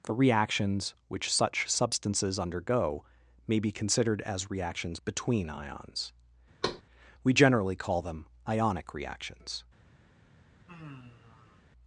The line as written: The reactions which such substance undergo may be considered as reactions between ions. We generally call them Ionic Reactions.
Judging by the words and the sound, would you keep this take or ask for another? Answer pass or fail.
fail